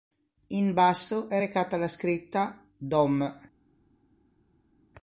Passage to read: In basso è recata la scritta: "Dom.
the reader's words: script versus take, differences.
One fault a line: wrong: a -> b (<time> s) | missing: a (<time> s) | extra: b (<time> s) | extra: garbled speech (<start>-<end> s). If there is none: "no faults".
no faults